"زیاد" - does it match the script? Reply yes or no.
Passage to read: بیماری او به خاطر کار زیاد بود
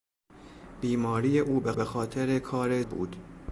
no